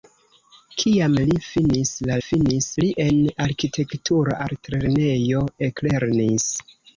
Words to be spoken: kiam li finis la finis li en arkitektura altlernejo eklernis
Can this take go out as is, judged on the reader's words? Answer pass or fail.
pass